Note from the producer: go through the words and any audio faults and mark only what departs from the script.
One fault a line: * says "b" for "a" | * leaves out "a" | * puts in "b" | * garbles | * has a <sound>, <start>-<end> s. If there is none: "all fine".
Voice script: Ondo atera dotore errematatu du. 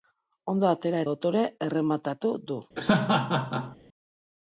* has a laugh, 2.8-3.8 s